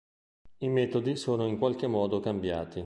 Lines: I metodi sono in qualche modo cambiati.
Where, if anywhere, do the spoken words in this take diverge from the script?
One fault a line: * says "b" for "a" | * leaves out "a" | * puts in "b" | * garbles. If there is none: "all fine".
all fine